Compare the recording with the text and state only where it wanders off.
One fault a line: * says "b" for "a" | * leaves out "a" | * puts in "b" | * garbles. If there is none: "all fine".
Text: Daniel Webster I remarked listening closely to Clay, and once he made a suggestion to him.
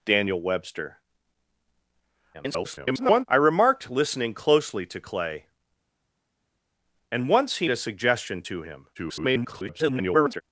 * garbles
* leaves out "made"
* garbles